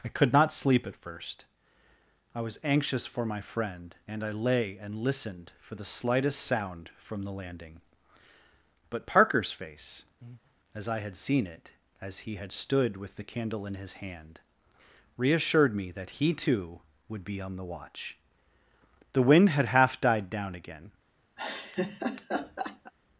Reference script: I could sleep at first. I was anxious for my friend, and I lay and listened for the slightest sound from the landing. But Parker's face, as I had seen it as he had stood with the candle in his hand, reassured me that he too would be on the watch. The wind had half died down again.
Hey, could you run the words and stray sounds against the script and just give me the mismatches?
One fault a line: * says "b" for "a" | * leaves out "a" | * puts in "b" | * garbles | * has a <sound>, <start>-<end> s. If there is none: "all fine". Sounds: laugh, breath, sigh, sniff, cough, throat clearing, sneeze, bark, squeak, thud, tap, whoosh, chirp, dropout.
* puts in "not"
* has a breath, 10.2-10.5 s
* has a laugh, 21.4-22.9 s